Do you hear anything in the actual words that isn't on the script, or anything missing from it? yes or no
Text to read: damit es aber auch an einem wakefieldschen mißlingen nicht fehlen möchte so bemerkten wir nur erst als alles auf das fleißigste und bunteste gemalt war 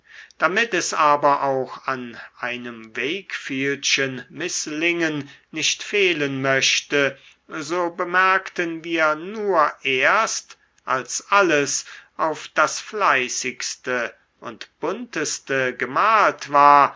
no